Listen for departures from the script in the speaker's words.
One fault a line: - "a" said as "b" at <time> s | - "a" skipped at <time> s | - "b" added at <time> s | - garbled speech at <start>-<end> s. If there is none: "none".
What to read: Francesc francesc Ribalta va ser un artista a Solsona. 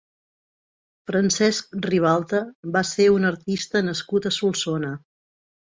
- "francesc" skipped at 1.8 s
- "nascut" added at 3.9 s